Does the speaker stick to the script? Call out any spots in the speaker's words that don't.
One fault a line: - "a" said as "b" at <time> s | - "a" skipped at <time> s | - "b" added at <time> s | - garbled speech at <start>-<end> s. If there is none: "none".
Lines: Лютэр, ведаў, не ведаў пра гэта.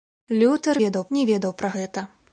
none